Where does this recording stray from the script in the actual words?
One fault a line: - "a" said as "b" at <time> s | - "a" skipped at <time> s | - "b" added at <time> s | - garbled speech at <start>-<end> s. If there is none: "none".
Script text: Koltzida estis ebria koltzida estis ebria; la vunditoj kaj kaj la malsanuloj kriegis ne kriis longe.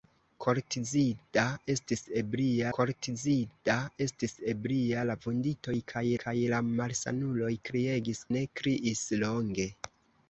none